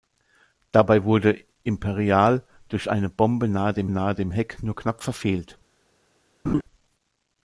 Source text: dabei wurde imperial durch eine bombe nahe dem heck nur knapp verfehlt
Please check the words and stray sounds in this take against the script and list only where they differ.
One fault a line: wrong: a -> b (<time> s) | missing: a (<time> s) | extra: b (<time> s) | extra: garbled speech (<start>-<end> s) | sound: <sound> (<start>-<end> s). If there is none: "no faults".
extra: nahe dem (3.9 s)
sound: laugh (6.4-6.6 s)